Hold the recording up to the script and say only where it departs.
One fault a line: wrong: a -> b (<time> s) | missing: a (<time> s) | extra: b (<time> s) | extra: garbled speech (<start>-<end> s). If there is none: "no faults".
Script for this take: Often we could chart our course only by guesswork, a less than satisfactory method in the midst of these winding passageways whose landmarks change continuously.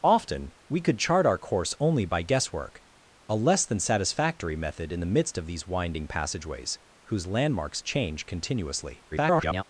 extra: garbled speech (9.1-9.6 s)